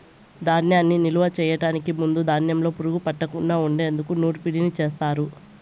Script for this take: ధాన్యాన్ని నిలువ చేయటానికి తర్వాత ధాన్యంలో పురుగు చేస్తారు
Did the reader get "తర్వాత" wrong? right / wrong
wrong